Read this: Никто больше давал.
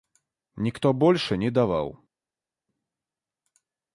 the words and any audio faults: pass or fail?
fail